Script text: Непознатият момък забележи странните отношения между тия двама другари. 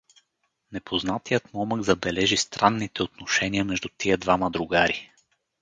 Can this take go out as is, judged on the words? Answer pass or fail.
pass